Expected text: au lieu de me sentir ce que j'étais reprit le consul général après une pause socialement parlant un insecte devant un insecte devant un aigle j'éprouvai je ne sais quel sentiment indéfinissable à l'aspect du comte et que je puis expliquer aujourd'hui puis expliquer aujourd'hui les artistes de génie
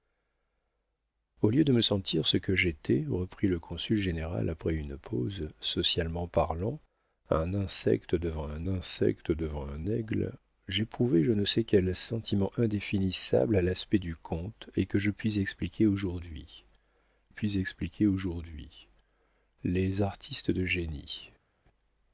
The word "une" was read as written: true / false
true